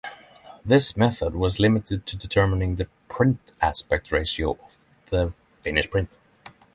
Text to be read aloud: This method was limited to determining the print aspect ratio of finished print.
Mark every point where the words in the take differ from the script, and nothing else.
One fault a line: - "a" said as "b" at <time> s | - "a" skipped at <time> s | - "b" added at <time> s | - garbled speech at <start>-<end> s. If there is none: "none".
- "the" added at 5.1 s